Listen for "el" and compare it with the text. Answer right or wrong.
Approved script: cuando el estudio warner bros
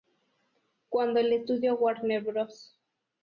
right